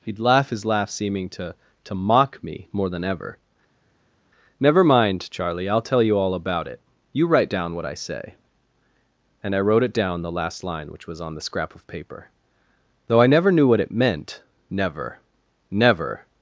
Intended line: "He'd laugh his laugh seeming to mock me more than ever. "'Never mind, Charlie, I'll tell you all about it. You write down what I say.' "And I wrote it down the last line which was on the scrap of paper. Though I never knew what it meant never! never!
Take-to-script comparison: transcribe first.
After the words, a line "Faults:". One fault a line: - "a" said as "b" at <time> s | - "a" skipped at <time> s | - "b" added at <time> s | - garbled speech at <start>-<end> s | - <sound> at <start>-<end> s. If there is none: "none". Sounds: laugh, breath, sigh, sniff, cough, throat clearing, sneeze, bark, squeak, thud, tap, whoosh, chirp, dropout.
"He'd laugh his laugh seeming to to mock me more than ever. "'Never mind, Charlie, I'll tell you all about it. You write down what I say.' "And I wrote it down the last line which was on the scrap of paper. Though I never knew what it meant never! never!
Faults:
- "to" added at 1.8 s